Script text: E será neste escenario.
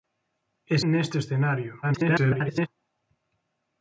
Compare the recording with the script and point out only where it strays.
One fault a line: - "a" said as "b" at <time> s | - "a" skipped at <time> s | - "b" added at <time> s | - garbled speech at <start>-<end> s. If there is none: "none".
- "será" skipped at 0.8 s
- garbled speech at 1.8-2.7 s